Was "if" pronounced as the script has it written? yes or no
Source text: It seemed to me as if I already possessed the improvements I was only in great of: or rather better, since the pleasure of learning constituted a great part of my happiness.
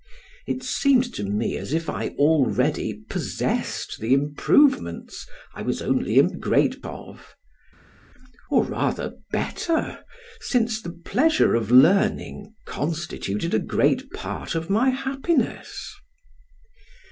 yes